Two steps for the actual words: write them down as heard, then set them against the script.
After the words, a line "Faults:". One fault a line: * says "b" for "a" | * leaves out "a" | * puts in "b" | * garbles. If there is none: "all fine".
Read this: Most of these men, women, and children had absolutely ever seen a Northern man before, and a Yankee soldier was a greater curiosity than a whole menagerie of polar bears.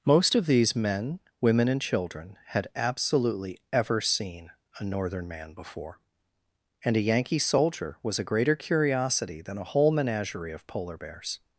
Most of these men, women, and children had absolutely ever seen a Northern man before, and a Yankee soldier was a greater curiosity than a whole menagerie of polar bears.
Faults:
all fine